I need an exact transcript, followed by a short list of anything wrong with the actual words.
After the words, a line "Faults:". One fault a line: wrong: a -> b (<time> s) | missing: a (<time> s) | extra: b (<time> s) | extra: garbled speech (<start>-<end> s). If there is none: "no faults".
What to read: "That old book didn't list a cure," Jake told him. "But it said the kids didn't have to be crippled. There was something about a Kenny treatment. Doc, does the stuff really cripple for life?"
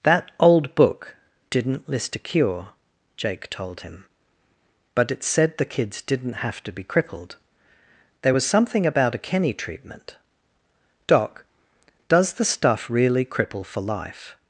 "That old book didn't list a cure," Jake told him. "But it said the kids didn't have to be crippled. There was something about a Kenny treatment. Doc, does the stuff really cripple for life?"
Faults:
no faults